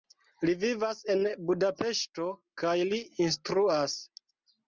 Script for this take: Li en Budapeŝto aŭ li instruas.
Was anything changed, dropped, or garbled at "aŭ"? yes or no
yes